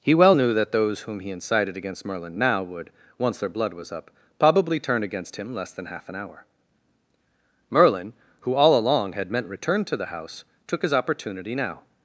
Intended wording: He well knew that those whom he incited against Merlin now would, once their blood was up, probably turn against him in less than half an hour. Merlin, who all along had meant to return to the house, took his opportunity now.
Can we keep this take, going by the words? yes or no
no